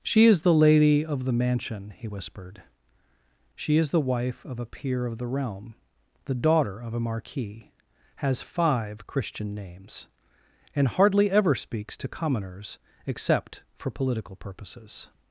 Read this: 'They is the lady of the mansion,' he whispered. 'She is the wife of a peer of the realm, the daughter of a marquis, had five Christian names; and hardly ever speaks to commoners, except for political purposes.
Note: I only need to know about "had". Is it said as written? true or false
false